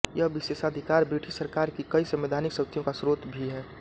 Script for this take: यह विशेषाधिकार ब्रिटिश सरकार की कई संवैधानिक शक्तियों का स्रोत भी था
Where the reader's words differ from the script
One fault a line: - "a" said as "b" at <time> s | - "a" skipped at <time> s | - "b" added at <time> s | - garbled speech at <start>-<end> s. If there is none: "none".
- "था" said as "है" at 3.5 s